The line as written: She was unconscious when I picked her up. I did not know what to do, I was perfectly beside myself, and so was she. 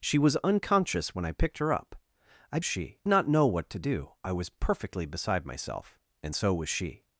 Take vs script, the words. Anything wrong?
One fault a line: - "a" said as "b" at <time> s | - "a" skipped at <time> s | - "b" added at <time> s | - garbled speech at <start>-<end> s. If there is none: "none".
- "did" said as "she" at 2.6 s